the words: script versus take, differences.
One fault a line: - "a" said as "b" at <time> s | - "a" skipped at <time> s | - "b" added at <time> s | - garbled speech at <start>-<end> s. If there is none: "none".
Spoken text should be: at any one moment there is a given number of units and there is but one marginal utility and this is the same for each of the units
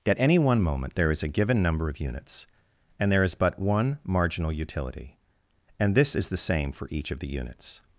none